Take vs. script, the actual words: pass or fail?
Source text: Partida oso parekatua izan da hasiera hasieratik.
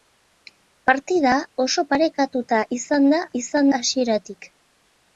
fail